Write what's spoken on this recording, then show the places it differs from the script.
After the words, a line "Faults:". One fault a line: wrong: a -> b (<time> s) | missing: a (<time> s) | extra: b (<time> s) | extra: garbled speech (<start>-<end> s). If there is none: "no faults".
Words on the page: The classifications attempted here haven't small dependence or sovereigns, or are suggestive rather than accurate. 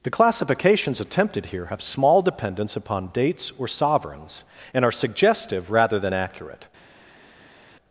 The classifications attempted here have small dependence upon dates or sovereigns, and are suggestive rather than accurate.
Faults:
wrong: haven't -> have (1.6 s)
extra: upon dates (2.8 s)
wrong: or -> and (4.7 s)